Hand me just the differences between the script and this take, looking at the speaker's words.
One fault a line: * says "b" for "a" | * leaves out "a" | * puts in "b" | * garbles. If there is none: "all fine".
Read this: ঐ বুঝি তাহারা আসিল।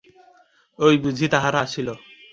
all fine